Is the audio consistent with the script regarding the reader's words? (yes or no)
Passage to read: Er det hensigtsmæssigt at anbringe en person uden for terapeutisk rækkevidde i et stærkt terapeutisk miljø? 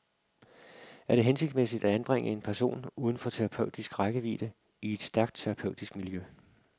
yes